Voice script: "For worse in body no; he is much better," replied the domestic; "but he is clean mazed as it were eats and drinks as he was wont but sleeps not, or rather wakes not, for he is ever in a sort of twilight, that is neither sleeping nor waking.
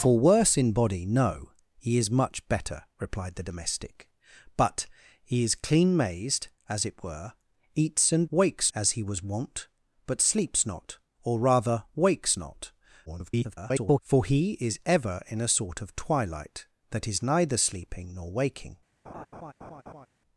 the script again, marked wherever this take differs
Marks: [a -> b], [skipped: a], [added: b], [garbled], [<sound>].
"For worse in body no; he is much better," replied the domestic; "but he is clean mazed as it were eats and [drinks -> wakes] as he was wont but sleeps not, or rather wakes not, [garbled] for he is ever in a sort of twilight, that is neither sleeping nor waking. [laugh]